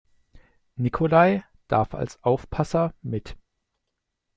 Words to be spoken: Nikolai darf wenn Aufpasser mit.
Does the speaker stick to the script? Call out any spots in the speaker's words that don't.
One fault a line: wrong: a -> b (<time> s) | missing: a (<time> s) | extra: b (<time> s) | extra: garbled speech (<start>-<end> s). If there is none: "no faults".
wrong: wenn -> als (1.9 s)